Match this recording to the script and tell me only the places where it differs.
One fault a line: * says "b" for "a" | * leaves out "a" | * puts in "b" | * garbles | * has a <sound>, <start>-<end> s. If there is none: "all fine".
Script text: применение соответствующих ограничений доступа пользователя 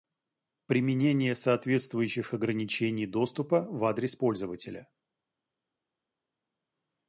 * puts in "в адрес"